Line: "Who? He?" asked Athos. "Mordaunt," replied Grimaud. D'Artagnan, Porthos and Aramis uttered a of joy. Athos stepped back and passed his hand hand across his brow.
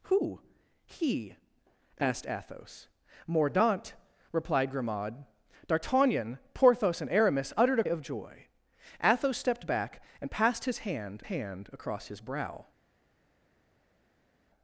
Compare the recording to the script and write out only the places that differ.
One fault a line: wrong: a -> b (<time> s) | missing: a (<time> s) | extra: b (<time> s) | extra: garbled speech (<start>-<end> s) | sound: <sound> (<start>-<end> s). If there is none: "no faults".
no faults